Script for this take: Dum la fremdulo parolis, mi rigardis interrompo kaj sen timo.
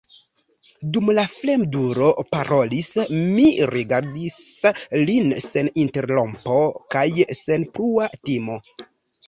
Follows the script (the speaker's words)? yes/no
no